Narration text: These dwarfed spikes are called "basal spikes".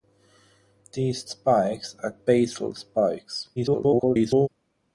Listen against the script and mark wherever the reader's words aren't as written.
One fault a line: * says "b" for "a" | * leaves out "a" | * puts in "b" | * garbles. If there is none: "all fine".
* leaves out "dwarfed"
* leaves out "called"
* garbles